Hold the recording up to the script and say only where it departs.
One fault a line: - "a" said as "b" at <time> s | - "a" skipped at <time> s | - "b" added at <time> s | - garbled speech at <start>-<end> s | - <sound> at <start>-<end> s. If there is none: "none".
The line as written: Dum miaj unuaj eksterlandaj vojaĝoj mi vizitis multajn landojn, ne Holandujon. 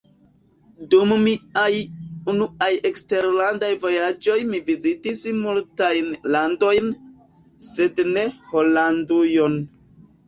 - "sed" added at 7.7 s